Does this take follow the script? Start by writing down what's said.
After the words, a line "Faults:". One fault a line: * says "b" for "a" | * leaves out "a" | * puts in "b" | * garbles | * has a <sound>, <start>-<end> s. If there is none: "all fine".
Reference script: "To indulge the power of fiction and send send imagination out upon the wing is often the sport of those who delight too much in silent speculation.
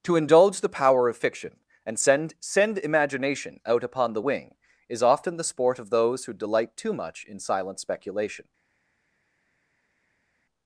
"To indulge the power of fiction and send send imagination out upon the wing is often the sport of those who delight too much in silent speculation.
Faults:
all fine